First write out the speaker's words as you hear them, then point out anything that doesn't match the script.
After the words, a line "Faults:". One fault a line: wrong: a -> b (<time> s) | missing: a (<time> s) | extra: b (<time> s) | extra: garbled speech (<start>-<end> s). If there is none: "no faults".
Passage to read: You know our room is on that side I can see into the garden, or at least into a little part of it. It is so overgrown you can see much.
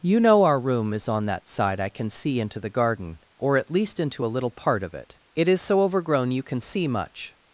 You know our room is on that side I can see into the garden, or at least into a little part of it. It is so overgrown you can see much.
Faults:
no faults